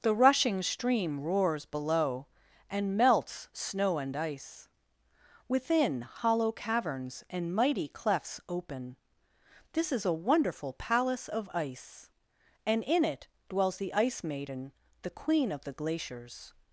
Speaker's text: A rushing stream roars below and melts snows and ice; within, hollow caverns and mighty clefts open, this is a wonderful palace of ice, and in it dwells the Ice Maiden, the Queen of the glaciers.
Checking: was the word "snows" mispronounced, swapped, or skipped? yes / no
yes